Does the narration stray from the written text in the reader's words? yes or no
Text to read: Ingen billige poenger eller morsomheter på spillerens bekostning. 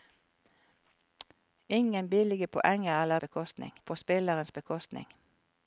yes